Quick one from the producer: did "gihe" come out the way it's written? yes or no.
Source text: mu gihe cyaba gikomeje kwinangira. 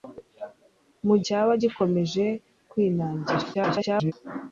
no